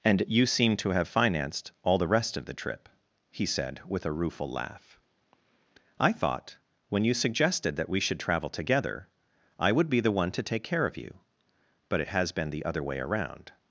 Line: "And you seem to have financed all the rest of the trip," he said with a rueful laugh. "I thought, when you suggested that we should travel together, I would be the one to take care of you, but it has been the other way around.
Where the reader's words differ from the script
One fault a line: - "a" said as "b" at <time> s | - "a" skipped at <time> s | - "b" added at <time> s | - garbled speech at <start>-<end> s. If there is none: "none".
none